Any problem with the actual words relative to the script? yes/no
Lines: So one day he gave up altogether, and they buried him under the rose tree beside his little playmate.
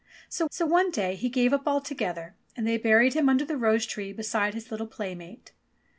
yes